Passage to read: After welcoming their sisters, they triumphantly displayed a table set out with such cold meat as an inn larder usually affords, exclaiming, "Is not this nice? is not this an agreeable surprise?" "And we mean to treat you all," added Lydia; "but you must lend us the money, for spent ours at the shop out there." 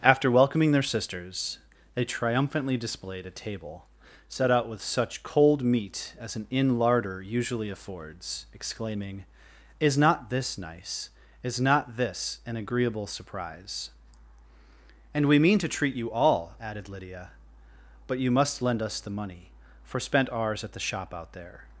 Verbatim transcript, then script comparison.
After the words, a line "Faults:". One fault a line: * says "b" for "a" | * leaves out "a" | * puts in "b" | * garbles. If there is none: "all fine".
After welcoming their sisters, they triumphantly displayed a table set out with such cold meat as an inn larder usually affords, exclaiming, "Is not this nice? is not this an agreeable surprise?" "And we mean to treat you all," added Lydia; "but you must lend us the money, for spent ours at the shop out there."
Faults:
all fine